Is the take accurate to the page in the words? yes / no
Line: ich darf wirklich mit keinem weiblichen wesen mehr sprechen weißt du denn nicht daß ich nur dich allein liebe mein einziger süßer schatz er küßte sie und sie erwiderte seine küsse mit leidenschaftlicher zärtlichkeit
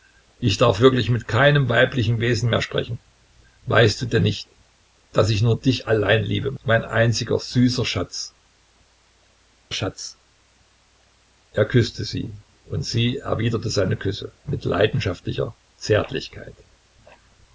no